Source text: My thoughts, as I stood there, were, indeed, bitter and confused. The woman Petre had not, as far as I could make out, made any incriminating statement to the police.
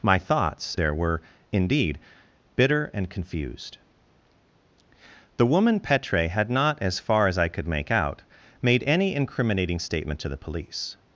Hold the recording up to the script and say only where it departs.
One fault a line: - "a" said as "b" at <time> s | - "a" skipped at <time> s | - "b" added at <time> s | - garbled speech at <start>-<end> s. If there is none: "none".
- "as I stood" skipped at 0.8 s